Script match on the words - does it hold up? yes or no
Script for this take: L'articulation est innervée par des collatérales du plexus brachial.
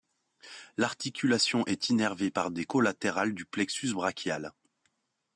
yes